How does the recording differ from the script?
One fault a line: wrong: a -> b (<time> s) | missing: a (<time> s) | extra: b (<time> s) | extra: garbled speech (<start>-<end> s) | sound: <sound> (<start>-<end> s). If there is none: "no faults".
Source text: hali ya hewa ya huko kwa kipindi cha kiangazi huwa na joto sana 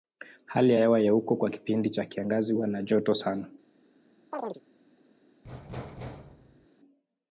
sound: chirp (4.3-4.6 s)
sound: thud (5.4-6.7 s)